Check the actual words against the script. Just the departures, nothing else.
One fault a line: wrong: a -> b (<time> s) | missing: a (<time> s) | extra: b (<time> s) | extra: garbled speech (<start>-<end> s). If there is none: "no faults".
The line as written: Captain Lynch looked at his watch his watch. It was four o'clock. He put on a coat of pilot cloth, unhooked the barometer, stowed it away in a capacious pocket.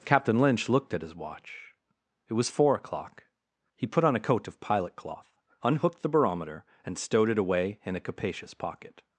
missing: his watch (1.7 s)
extra: and (6.8 s)